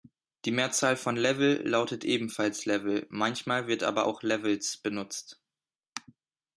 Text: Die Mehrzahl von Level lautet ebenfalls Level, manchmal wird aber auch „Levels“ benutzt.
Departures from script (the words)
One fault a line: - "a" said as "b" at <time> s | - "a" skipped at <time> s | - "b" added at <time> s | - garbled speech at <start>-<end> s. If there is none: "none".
none